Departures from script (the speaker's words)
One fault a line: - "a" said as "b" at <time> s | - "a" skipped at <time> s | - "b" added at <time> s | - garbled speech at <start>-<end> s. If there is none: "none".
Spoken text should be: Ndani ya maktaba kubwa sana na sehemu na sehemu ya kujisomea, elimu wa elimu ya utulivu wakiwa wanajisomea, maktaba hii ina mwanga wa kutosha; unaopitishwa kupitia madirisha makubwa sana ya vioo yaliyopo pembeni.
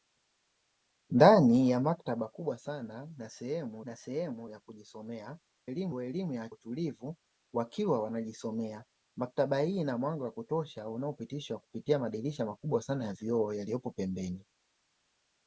none